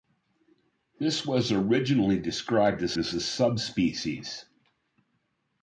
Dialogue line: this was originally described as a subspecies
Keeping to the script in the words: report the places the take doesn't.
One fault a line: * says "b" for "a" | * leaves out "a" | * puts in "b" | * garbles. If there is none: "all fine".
* puts in "as"